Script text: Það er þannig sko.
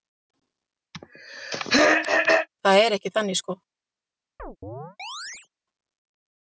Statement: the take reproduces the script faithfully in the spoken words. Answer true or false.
false